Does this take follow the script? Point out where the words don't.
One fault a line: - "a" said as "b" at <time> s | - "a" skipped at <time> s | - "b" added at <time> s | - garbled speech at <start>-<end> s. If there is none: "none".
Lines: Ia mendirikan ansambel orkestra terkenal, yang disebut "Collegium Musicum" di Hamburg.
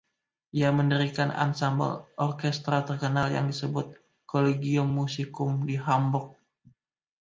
none